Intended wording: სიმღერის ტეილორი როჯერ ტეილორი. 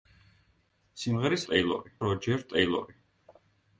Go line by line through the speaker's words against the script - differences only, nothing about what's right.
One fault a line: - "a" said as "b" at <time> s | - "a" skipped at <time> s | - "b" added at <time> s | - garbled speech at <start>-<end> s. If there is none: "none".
none